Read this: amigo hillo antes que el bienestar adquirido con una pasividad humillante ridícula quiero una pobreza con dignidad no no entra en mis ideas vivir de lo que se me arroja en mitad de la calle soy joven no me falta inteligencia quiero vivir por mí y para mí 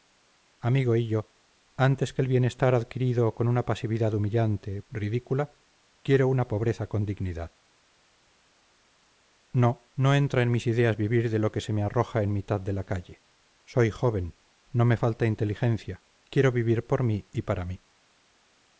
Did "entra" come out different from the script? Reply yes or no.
no